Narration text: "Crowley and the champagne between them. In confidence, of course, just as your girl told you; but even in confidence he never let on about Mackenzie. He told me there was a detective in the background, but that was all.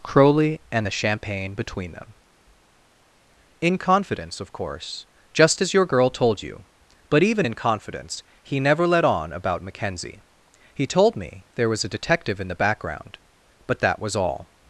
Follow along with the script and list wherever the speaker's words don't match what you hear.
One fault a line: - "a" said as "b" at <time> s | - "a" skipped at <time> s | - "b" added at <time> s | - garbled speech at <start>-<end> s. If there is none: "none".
none